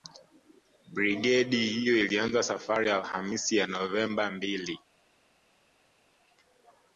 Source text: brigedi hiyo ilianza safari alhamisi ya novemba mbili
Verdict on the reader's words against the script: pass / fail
pass